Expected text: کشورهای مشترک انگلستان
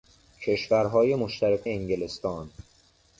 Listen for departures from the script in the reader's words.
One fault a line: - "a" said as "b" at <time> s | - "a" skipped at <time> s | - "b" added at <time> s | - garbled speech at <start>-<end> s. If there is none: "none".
none